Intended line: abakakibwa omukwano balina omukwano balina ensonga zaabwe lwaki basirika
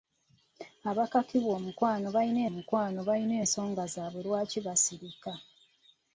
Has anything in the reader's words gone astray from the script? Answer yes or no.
no